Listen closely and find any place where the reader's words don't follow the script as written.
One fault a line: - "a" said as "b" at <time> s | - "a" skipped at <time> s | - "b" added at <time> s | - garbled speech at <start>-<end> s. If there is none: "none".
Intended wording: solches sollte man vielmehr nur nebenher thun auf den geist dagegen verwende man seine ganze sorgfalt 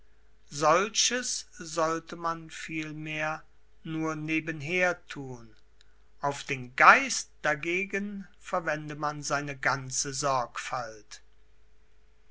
none